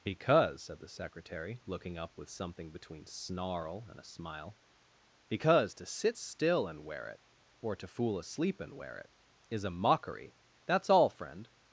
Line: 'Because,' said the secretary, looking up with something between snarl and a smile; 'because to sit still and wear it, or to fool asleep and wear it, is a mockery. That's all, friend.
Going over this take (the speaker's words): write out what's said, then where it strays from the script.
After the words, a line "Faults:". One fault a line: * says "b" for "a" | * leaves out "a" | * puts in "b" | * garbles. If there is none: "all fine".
'Because,' said the secretary, looking up with something between snarl and a smile; 'because to sit still and wear it, or to fool asleep and wear it, is a mockery. That's all, friend.
Faults:
all fine